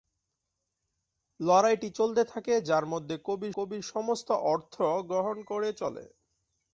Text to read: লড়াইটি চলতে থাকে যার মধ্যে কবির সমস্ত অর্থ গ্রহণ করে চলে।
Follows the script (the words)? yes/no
no